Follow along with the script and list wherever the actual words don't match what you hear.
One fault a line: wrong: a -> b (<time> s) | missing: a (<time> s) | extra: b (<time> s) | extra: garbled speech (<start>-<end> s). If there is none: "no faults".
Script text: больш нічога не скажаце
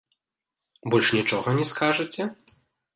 no faults